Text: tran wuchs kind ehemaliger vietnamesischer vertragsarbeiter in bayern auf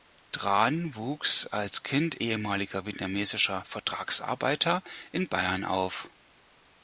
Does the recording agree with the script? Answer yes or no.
no